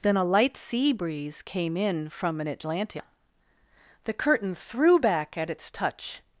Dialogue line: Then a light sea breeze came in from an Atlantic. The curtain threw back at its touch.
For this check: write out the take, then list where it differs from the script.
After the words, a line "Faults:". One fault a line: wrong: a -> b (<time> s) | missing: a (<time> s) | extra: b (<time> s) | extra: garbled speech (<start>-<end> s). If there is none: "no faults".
Then a light sea breeze came in from an Atlantic. The curtain threw back at its touch.
Faults:
no faults